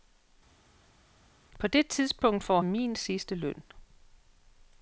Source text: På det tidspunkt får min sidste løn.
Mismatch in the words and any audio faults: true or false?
false